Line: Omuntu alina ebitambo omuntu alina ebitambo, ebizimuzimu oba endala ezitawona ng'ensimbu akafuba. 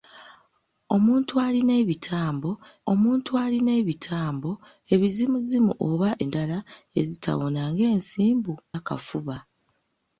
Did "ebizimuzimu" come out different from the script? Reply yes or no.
no